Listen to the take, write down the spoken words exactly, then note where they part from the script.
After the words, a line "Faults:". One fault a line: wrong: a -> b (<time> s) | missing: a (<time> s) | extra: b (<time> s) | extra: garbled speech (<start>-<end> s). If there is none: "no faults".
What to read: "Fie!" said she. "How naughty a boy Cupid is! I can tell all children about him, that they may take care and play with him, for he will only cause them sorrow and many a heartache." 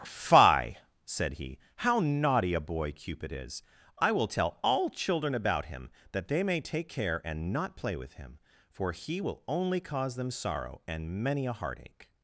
"Fie!" said he. "How naughty a boy Cupid is! I will tell all children about him, that they may take care and not play with him, for he will only cause them sorrow and many a heartache."
Faults:
wrong: she -> he (1.3 s)
wrong: can -> will (4.1 s)
extra: not (7.5 s)